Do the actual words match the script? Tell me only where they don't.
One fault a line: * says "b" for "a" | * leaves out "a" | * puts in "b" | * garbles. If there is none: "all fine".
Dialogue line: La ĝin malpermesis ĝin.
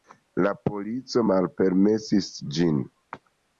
* says "polico" for "ĝin"